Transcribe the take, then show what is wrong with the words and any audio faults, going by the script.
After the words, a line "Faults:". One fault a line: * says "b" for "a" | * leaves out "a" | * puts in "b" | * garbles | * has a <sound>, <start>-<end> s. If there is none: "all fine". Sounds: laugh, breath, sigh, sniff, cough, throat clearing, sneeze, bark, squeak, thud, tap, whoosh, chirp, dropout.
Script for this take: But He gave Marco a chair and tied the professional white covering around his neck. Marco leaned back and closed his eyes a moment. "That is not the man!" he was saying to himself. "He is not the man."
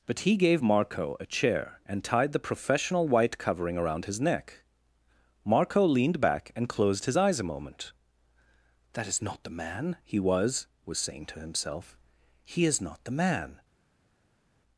But He gave Marco a chair and tied the professional white covering around his neck. Marco leaned back and closed his eyes a moment. "That is not the man!" he was was saying to himself. "He is not the man."
Faults:
* puts in "was"